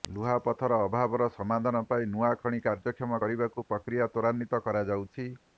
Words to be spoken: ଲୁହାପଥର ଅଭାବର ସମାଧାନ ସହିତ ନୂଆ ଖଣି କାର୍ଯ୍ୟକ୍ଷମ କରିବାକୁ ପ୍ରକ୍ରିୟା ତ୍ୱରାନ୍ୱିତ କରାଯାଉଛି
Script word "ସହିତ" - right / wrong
wrong